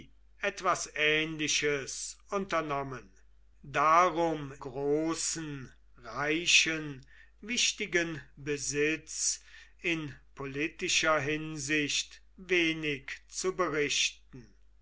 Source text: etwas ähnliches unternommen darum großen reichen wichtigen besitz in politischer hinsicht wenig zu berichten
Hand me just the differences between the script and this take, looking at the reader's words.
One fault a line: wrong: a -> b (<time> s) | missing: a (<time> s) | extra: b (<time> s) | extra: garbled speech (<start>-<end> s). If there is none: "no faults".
no faults